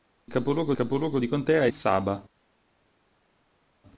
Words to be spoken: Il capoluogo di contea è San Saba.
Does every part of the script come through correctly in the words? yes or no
no